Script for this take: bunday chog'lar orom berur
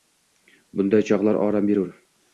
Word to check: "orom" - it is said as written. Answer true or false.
true